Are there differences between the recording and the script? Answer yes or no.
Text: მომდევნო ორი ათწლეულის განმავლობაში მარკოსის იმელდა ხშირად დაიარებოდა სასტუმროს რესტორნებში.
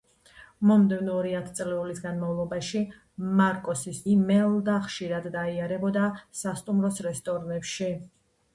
no